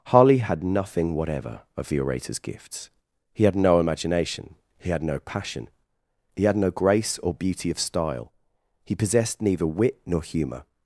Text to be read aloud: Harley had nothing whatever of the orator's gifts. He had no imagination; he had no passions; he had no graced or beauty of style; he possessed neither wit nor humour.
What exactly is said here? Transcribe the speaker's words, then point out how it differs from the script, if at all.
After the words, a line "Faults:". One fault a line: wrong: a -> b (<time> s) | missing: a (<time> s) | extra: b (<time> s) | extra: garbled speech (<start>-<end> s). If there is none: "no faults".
Harley had nothing whatever of the orator's gifts. He had no imagination; he had no passion; he had no grace or beauty of style; he possessed neither wit nor humour.
Faults:
wrong: passions -> passion (5.2 s)
wrong: graced -> grace (6.7 s)